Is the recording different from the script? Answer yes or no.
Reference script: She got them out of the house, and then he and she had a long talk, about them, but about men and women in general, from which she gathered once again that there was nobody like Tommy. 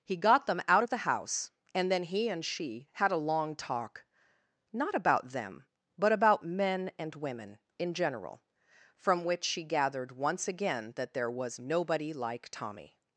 yes